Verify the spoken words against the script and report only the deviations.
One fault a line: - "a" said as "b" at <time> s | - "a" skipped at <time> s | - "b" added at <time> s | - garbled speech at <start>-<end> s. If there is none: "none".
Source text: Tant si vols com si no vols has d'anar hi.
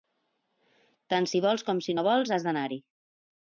none